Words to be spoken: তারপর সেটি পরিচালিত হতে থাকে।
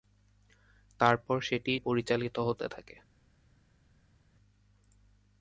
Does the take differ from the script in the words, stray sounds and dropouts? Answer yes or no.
no